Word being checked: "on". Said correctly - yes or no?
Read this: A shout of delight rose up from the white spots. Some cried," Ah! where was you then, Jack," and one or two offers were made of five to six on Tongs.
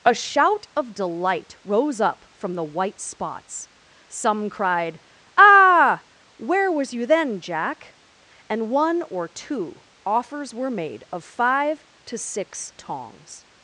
no